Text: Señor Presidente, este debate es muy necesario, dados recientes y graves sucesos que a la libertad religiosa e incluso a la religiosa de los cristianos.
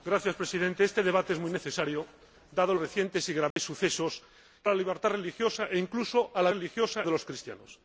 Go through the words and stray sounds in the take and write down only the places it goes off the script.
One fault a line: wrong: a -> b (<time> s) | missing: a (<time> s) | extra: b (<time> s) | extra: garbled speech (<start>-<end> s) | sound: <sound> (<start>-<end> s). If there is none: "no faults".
sound: dropout (3.5-3.6 s)